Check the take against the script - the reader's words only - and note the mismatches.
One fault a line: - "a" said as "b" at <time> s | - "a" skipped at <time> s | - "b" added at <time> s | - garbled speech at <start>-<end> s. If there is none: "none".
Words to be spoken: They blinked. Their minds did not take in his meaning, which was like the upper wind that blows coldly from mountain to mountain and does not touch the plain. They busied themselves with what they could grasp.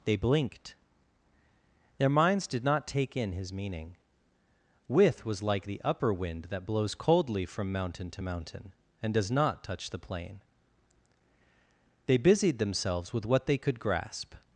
- "which" said as "with" at 4.9 s